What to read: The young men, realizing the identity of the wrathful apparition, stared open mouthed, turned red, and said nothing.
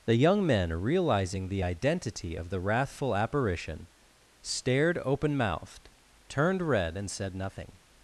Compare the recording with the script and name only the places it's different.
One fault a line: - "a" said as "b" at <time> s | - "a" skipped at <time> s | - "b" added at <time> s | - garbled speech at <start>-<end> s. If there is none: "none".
none